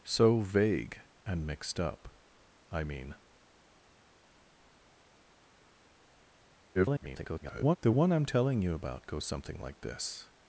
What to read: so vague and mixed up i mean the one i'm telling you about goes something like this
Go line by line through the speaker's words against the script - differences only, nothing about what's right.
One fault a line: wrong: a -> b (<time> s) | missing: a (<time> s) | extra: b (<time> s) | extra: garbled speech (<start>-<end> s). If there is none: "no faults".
extra: garbled speech (6.7-7.8 s)